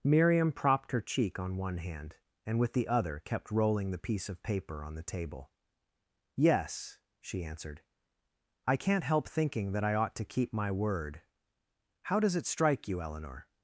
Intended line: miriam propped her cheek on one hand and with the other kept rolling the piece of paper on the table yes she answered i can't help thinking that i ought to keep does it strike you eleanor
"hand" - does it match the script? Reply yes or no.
yes